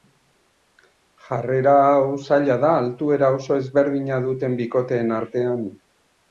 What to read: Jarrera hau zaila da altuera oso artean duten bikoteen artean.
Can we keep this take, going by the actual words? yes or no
no